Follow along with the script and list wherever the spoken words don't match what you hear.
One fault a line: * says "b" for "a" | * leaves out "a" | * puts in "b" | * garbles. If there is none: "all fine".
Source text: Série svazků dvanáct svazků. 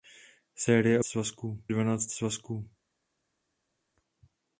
all fine